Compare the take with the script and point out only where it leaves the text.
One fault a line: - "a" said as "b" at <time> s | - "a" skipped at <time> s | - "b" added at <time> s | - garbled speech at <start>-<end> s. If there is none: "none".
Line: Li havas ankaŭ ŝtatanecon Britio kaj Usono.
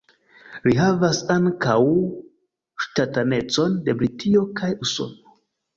- "de" added at 3.9 s